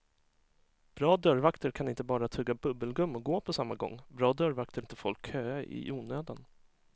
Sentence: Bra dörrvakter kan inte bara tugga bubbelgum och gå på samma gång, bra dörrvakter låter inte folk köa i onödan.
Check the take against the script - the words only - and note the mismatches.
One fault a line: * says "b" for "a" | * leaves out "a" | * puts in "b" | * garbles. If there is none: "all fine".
* leaves out "låter"